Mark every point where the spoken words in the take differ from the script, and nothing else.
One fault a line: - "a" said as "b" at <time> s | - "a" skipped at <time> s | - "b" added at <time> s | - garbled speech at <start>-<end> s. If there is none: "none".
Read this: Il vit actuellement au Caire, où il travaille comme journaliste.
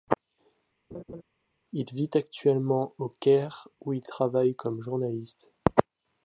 none